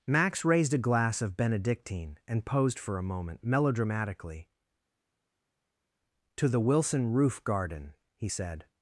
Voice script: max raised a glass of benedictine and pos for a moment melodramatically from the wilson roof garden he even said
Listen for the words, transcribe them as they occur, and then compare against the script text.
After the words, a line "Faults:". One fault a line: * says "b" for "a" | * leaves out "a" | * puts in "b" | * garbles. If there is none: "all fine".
max raised a glass of benedictine and posed for a moment melodramatically to the wilson roof garden he said
Faults:
* says "posed" for "pos"
* says "to" for "from"
* leaves out "even"